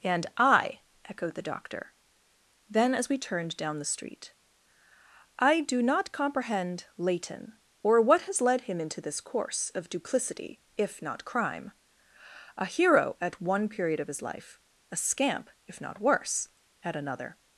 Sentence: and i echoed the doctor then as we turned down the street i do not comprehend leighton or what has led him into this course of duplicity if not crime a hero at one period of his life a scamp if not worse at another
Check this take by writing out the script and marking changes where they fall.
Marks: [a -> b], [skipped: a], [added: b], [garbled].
and i echoed the doctor then as we turned down the street i do not comprehend leighton or what has led him into this course of duplicity if not crime a hero at one period of his life a scamp if not worse at another